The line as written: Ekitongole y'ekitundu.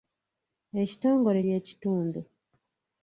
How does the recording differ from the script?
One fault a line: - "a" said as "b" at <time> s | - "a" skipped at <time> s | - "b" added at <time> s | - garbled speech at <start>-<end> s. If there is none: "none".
none